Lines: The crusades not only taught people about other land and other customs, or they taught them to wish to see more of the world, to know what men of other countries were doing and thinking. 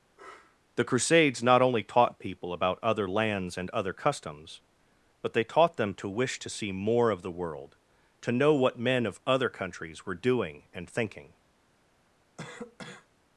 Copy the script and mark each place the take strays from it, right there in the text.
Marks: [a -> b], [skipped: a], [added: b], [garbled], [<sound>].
[sniff] The crusades not only taught people about other [land -> lands] and other customs, [or -> but] they taught them to wish to see more of the world, to know what men of other countries were doing and thinking. [cough]